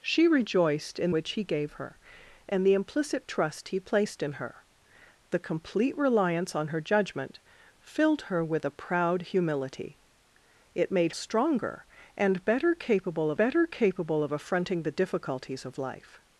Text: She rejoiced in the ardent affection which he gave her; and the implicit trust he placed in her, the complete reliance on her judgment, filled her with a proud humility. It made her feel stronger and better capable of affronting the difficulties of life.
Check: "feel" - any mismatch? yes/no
yes